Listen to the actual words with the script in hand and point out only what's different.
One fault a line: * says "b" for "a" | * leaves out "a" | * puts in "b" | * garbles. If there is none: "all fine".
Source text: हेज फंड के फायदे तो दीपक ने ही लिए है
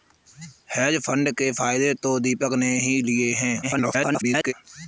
* garbles